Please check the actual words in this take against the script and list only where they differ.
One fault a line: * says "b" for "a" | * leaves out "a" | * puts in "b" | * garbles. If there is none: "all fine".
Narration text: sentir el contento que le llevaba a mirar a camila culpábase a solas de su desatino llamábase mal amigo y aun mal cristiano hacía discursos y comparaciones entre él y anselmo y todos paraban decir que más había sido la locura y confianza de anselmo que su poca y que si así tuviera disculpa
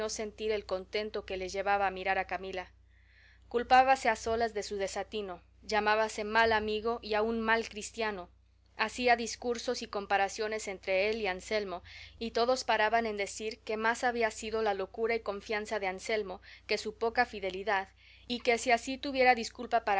* puts in "en"
* puts in "fidelidad"